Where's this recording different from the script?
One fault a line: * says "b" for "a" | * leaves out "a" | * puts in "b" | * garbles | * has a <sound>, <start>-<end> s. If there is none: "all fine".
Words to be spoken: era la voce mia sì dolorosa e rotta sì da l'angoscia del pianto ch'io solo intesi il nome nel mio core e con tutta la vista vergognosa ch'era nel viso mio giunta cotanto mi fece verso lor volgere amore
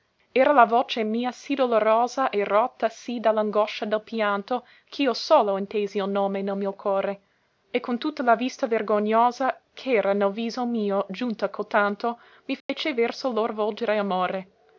* has a dropout, 12.6-12.7 s